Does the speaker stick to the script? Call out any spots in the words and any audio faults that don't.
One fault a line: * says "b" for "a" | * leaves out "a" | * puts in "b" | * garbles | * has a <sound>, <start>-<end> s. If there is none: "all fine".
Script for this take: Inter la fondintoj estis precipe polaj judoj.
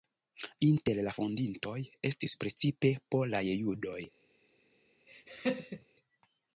* has a laugh, 5.1-5.9 s